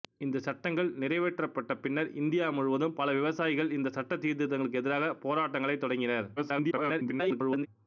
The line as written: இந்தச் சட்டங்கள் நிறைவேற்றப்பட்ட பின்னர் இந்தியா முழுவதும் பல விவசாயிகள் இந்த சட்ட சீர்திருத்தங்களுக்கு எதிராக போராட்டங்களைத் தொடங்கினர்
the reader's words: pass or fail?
fail